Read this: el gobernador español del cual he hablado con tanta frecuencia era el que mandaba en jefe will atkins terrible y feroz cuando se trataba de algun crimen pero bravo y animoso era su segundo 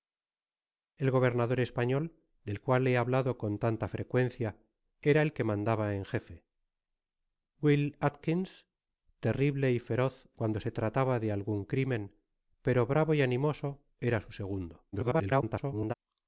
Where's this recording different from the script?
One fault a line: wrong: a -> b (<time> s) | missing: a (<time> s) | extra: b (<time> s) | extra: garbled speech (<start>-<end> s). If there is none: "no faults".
extra: garbled speech (14.9-15.9 s)